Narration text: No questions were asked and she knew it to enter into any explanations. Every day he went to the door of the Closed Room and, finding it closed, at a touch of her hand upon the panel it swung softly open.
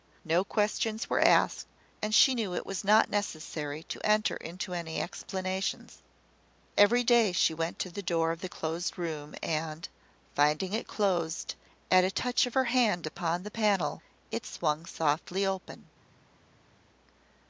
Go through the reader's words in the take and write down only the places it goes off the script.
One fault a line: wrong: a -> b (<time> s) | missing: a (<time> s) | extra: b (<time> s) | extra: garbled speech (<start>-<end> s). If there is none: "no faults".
extra: was not necessary (2.7 s)
wrong: he -> she (7.3 s)